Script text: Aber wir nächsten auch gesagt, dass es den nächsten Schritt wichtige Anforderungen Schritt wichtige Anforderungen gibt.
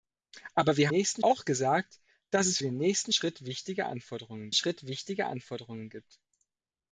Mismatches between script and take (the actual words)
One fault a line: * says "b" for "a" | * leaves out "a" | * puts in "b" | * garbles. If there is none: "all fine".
all fine